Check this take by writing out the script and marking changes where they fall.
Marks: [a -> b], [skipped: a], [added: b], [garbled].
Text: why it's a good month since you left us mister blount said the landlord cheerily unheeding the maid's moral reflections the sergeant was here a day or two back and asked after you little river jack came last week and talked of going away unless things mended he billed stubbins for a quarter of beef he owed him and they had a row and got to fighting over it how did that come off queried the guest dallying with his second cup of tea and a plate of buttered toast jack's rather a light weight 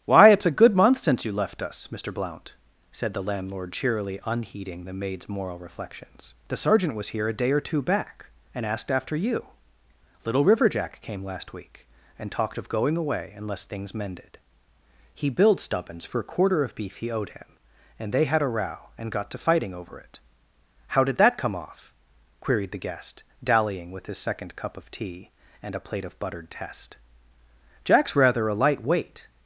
why it's a good month since you left us mister blount said the landlord cheerily unheeding the maid's moral reflections the sergeant was here a day or two back and asked after you little river jack came last week and talked of going away unless things mended he billed stubbins for a quarter of beef he owed him and they had a row and got to fighting over it how did that come off queried the guest dallying with his second cup of tea and a plate of buttered [toast -> test] jack's rather a light weight